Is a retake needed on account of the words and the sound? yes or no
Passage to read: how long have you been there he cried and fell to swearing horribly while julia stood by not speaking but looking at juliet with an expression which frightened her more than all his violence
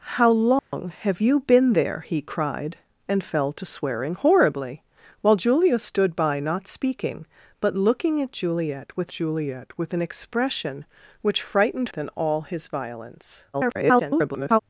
yes